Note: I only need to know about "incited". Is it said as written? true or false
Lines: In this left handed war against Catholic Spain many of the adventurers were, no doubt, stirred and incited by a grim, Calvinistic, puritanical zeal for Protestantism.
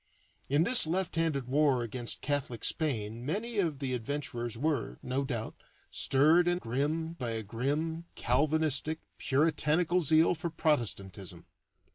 false